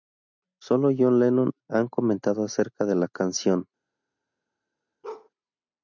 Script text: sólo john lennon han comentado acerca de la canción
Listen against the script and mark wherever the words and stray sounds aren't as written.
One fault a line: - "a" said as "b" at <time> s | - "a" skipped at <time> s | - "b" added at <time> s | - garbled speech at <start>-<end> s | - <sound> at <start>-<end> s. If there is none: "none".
- bark at 5.0-5.3 s